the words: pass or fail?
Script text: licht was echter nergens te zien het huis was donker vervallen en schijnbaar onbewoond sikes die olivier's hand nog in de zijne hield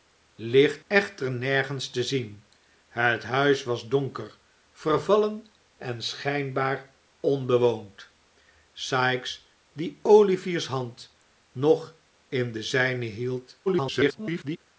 fail